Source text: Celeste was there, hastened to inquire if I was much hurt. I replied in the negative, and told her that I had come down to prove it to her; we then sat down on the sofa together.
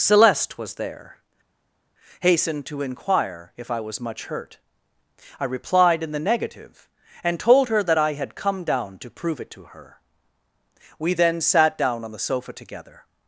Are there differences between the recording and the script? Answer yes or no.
no